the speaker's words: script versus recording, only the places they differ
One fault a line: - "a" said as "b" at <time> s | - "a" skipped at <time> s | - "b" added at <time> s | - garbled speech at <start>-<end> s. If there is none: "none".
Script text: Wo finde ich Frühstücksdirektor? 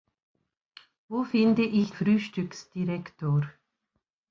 none